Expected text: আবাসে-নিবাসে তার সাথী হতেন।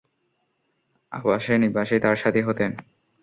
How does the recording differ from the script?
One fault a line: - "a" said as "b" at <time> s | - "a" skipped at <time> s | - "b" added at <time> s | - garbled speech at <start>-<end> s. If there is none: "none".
none